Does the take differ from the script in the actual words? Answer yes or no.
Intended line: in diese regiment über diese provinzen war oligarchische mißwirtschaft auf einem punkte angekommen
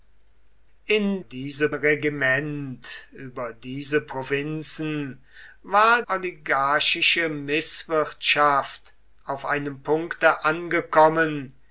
no